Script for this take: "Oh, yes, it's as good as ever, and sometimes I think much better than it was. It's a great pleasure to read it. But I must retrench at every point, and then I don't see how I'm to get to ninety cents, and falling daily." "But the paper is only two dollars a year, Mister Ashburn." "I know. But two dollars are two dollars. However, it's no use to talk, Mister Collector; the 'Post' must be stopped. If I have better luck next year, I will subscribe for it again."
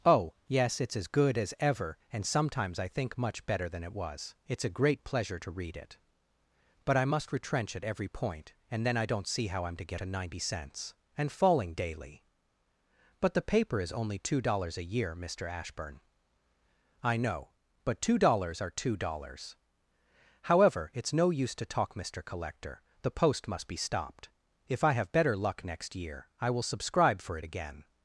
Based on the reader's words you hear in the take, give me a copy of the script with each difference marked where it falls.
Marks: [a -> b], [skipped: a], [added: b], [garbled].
"Oh, yes, it's as good as ever, and sometimes I think much better than it was. It's a great pleasure to read it. But I must retrench at every point, and then I don't see how I'm to get to ninety cents, and falling daily." "But the paper is only two dollars a year, Mister Ashburn." "I know. But two dollars are two dollars. However, it's no use to talk, Mister Collector; the 'Post' must be stopped. If I have better luck next year, I will subscribe for it again."